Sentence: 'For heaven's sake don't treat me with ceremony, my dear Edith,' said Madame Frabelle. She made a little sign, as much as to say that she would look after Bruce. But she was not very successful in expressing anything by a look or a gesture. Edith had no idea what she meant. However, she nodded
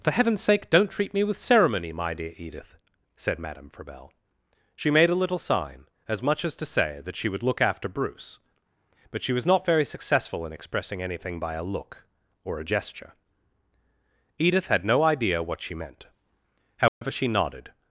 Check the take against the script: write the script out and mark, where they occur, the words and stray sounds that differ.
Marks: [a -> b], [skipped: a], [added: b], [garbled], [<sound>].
'For heaven's sake don't treat me with ceremony, my dear Edith,' said Madame Frabelle. She made a little sign, as much as to say that she would look after Bruce. But she was not very successful in expressing anything by a look or a gesture. Edith had no idea what she meant. However, [dropout] she nodded